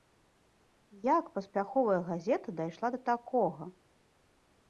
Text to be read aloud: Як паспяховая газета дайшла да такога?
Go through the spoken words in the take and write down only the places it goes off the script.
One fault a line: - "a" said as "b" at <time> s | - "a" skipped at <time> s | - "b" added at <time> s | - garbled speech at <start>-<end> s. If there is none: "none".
none